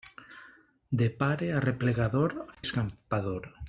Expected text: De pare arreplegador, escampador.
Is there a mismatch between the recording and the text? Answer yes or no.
no